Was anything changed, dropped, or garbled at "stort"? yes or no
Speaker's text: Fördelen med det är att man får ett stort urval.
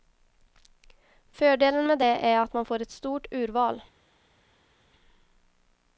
no